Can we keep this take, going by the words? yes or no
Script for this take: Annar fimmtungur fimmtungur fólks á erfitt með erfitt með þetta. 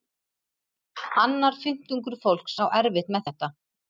no